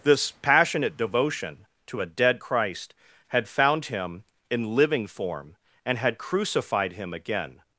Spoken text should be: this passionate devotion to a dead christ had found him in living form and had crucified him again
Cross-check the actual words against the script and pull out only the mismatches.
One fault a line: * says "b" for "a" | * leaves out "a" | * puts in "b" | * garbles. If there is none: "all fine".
all fine